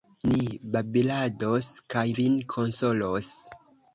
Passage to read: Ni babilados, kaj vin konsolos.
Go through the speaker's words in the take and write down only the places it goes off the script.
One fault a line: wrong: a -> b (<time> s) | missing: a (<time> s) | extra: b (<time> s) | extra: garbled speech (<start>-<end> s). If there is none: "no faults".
no faults